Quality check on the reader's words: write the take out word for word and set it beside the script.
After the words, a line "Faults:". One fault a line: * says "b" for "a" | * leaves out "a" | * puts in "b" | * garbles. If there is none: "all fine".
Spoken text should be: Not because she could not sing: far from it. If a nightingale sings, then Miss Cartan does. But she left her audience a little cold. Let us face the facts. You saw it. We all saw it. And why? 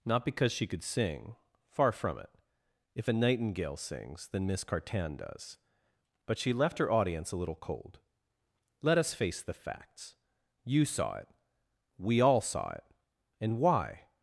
Not because she could sing: far from it. If a nightingale sings, then Miss Cartan does. But she left her audience a little cold. Let us face the facts. You saw it. We all saw it. And why?
Faults:
* leaves out "not"